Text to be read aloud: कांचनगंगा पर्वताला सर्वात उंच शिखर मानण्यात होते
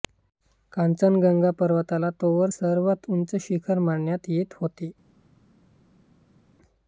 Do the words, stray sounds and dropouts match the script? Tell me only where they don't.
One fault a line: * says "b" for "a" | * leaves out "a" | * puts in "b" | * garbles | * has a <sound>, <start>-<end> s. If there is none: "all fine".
* puts in "तोवर"
* puts in "येत"